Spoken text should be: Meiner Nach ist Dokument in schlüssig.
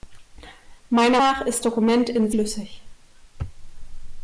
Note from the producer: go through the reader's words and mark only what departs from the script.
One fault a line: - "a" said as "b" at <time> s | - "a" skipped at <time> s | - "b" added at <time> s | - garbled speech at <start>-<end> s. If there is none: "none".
none